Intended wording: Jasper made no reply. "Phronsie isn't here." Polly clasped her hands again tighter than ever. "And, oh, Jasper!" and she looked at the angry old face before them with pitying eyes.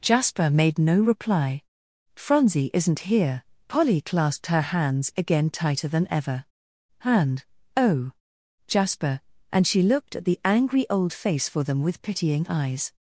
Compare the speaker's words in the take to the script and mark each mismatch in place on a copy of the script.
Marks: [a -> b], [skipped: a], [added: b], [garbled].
Jasper made no reply. "Phronsie isn't here." Polly clasped her hands again tighter than ever. "And, oh, Jasper!" and she looked at the angry old face [before -> for] them with pitying eyes.